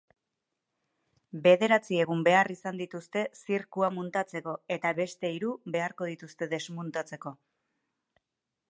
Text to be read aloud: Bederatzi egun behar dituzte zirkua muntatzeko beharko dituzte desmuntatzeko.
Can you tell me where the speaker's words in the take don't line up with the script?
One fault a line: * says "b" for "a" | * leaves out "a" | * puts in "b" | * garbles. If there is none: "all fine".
* puts in "izan"
* puts in "eta beste hiru"